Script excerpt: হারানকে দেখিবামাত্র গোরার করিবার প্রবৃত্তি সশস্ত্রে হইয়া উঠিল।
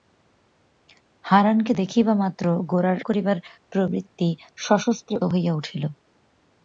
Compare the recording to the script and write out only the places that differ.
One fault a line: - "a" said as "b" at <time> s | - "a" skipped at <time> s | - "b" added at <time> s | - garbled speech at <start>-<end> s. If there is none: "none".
none